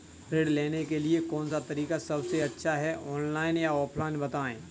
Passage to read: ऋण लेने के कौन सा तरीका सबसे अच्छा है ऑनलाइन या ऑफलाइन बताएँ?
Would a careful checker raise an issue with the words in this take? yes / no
yes